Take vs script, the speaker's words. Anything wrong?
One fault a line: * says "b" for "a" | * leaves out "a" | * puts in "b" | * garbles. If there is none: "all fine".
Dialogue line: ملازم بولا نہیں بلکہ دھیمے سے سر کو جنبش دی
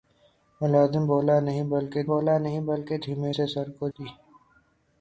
* puts in "بولا نہیں بلکہ"
* leaves out "جنبش"